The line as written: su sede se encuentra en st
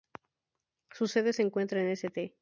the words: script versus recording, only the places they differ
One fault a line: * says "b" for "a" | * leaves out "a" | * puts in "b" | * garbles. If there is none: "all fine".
all fine